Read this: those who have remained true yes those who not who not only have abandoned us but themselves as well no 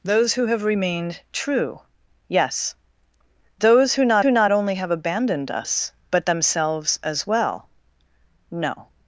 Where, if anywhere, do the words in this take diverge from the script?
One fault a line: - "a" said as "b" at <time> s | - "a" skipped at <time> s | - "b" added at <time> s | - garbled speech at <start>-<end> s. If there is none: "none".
none